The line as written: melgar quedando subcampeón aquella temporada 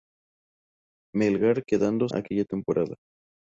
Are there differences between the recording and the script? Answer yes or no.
yes